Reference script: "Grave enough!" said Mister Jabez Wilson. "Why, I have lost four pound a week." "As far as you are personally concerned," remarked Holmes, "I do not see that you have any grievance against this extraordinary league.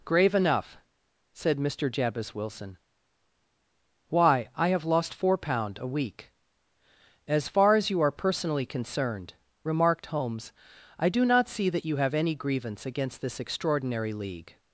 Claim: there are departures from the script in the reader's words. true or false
false